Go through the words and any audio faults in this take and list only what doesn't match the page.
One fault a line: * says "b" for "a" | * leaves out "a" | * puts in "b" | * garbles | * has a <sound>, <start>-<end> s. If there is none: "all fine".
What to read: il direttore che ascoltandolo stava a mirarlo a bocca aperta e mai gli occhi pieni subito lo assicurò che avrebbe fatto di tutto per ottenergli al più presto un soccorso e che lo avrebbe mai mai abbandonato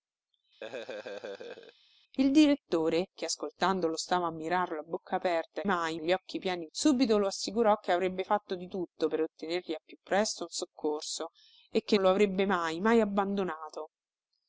* has a laugh, 0.6-1.7 s